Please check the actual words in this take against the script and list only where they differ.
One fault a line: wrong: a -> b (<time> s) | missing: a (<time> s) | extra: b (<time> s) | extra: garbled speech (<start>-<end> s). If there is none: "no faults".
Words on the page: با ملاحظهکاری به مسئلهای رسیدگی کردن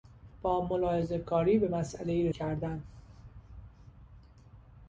missing: رسیدگی (2.3 s)